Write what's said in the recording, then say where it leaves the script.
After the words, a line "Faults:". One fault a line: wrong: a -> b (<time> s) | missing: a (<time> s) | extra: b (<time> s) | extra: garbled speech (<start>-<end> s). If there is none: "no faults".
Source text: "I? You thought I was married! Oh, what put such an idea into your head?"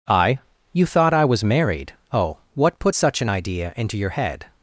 "I? You thought I was married! Oh, what put such an idea into your head?"
Faults:
no faults